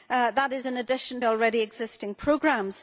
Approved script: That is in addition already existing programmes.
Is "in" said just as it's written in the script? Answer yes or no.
yes